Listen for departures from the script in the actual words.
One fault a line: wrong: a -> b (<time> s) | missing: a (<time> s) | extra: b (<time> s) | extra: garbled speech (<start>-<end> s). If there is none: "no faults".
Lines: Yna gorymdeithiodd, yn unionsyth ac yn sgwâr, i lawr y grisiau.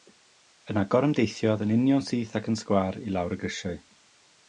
no faults